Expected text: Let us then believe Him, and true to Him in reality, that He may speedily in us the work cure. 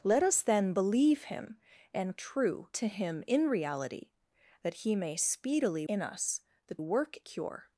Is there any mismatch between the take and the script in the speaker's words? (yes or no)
no